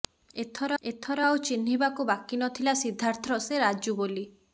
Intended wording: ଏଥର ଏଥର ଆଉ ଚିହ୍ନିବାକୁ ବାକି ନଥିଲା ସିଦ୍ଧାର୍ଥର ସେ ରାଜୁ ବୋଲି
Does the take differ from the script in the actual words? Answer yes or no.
no